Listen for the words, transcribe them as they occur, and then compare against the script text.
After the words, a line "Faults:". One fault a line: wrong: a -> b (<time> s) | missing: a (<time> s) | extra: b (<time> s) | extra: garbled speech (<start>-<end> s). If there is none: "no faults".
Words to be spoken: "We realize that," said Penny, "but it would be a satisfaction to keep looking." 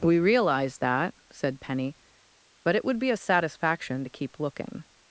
"We realize that," said Penny, "but it would be a satisfaction to keep looking."
Faults:
no faults